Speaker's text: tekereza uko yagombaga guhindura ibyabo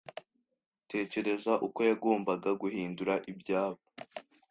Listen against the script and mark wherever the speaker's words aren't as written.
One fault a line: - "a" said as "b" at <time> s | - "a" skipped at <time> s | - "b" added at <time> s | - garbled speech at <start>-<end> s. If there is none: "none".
none